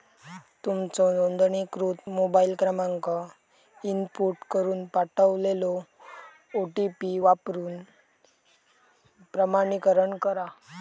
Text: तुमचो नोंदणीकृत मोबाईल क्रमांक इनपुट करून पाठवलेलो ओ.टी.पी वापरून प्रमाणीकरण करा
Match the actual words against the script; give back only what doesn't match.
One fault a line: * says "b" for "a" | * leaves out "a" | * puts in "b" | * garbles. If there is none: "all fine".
all fine